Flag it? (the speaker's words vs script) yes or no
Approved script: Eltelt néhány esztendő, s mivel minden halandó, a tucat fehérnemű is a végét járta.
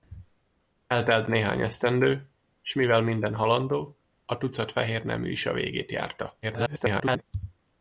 yes